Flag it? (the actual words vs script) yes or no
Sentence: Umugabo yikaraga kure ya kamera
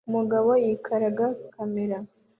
yes